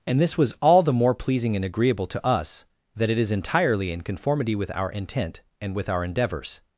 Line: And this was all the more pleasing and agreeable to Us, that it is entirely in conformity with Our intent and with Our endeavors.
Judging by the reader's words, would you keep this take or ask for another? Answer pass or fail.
pass